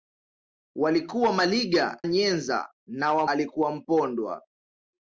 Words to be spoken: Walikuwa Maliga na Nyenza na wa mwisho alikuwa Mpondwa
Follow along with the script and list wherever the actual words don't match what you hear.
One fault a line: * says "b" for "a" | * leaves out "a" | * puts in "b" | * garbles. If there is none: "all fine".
* leaves out "na"
* leaves out "mwisho"